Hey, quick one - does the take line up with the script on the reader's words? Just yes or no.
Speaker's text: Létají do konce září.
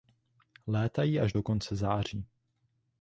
no